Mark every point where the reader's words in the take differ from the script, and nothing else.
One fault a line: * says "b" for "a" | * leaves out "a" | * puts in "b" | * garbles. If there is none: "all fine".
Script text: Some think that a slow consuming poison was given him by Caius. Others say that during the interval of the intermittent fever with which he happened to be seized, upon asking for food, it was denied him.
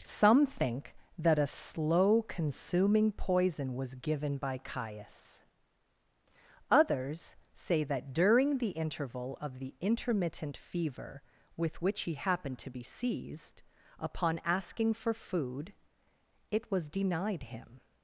* leaves out "him"